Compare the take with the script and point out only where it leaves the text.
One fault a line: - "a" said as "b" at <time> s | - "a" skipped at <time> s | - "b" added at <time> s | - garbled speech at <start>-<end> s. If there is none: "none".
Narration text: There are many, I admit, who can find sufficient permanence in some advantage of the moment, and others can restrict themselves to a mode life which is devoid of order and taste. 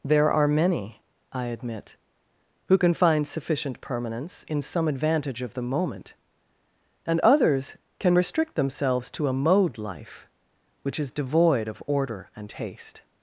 none